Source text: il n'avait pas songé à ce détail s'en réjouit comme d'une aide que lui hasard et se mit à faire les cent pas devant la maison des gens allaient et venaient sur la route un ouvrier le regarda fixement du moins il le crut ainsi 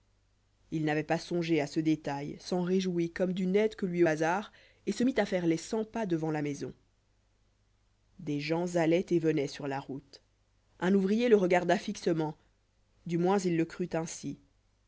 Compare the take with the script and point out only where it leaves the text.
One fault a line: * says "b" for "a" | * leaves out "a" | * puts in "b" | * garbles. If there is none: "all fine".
all fine